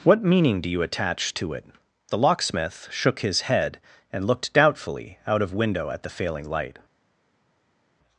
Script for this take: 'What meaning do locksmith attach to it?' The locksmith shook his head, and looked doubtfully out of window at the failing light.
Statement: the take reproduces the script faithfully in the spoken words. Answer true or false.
false